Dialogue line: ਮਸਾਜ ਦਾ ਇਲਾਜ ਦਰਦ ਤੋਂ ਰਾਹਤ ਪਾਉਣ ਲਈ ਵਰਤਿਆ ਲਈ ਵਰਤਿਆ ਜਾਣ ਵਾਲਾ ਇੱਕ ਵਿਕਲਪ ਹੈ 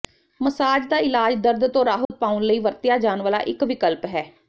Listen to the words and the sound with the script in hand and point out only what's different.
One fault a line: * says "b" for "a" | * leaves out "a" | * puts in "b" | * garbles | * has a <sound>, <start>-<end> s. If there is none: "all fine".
* has a dropout, 2.0-2.1 s
* leaves out "ਲਈ ਵਰਤਿਆ"